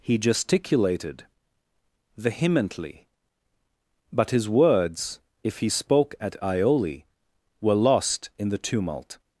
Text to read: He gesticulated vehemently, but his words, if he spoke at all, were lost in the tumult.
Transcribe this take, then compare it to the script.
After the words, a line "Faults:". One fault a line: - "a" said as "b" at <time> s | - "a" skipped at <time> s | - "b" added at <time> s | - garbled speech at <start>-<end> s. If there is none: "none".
He gesticulated vehemently, but his words, if he spoke at ioli, were lost in the tumult.
Faults:
- "all" said as "ioli" at 6.4 s